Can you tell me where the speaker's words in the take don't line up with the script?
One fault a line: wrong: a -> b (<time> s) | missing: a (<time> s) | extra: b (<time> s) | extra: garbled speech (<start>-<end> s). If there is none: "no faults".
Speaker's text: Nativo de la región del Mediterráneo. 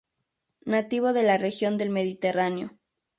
no faults